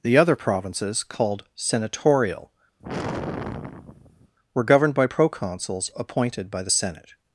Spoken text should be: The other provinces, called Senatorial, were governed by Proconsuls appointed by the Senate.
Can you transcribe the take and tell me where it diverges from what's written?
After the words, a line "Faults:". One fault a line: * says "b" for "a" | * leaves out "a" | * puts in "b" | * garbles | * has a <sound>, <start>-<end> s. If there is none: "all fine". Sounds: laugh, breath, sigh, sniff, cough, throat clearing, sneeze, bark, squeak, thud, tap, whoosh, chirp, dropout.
The other provinces, called Senatorial, were governed by Proconsuls appointed by the Senate.
Faults:
* has a sigh, 2.8-4.4 s